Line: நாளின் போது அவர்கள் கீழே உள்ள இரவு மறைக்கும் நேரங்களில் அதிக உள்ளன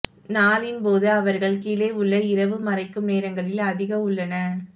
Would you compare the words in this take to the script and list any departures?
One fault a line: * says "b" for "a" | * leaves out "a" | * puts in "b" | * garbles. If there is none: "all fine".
all fine